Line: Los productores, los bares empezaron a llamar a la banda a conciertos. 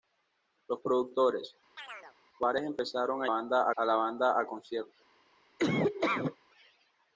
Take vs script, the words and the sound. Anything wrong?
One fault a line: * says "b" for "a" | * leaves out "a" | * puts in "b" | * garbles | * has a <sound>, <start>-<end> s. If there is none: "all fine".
* leaves out "los"
* has a chirp, 1.8-2.2 s
* says "banda" for "llamar"
* has a laugh, 5.6-6.4 s